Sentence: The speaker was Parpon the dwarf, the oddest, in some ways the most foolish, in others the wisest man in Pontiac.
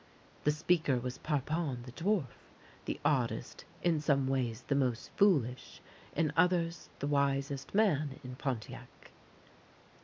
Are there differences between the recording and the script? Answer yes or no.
no